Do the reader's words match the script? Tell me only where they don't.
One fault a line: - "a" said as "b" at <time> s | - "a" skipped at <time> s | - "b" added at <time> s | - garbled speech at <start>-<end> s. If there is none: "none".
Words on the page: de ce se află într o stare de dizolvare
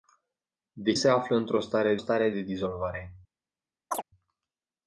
- "ce" skipped at 0.9 s
- "stare" added at 2.0 s